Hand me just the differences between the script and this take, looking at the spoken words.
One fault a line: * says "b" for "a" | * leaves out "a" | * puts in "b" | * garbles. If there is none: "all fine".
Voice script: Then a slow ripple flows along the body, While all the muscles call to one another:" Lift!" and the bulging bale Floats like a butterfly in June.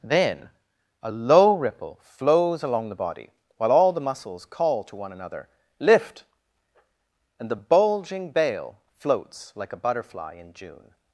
* says "low" for "slow"